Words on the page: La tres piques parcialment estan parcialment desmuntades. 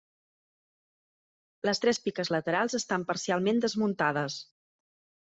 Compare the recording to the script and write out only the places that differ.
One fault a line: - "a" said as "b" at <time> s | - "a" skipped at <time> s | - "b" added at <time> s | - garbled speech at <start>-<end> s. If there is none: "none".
- "La" said as "Les" at 1.7 s
- "parcialment" said as "laterals" at 2.3 s